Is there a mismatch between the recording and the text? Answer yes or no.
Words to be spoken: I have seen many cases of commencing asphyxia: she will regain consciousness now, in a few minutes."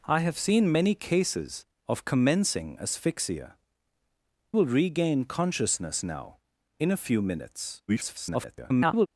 yes